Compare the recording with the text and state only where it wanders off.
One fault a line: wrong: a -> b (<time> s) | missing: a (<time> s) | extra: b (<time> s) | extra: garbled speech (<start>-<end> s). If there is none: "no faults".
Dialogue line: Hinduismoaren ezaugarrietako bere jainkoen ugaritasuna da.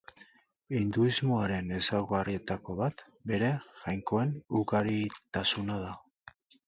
extra: bat (2.8 s)